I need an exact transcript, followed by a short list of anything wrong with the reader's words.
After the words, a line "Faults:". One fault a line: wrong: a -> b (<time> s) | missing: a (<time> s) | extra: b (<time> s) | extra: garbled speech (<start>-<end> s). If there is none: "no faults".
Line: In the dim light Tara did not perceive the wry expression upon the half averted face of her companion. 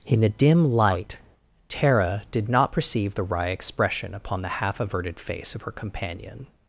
In the dim light Tara did not perceive the wry expression upon the half averted face of her companion.
Faults:
no faults